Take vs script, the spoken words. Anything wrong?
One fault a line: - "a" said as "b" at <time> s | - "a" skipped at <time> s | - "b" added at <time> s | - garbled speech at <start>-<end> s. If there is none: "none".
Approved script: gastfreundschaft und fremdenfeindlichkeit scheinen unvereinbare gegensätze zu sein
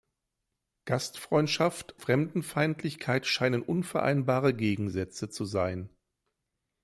- "und" skipped at 2.0 s